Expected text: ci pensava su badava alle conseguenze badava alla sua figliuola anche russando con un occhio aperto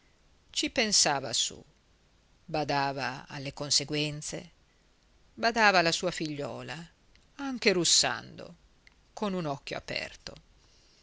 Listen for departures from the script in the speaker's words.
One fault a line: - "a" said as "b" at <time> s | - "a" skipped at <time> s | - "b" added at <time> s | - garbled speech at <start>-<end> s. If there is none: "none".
none